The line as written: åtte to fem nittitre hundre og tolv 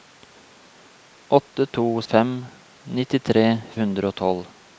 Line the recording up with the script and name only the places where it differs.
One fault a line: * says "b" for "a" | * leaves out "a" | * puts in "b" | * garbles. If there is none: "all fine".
all fine